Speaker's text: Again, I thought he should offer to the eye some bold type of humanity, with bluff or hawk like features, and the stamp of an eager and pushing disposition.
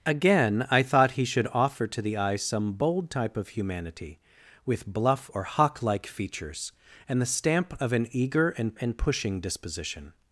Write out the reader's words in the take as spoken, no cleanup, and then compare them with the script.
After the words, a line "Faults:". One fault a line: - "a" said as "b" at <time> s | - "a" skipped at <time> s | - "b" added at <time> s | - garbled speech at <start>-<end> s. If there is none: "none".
Again, I thought he should offer to the eye some bold type of humanity, with bluff or hawk like features, and the stamp of an eager and and pushing disposition.
Faults:
- "and" added at 8.7 s